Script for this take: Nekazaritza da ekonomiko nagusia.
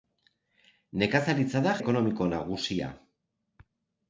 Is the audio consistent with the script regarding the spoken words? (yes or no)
yes